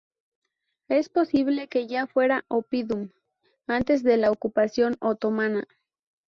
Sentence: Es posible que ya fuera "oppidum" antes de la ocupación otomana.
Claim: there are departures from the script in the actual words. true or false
false